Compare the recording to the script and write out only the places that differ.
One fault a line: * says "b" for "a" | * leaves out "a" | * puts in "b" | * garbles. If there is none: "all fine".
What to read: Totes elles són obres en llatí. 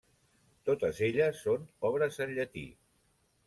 all fine